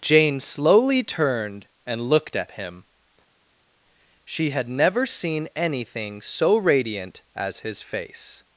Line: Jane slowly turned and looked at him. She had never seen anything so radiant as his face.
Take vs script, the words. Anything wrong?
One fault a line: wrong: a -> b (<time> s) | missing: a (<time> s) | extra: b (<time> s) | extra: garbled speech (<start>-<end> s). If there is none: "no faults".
no faults